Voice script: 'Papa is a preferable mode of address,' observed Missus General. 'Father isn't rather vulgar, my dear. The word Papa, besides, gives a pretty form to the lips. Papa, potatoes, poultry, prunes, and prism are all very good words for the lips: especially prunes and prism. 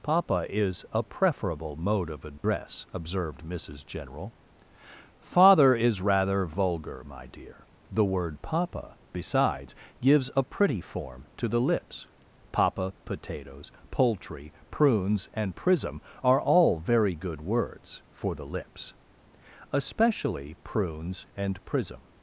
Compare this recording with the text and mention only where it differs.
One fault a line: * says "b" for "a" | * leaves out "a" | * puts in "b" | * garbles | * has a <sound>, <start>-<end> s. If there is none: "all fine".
* has a dropout, 2.4-2.4 s
* says "is" for "isn't"